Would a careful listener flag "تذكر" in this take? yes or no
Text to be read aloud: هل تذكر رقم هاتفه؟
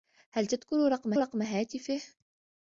no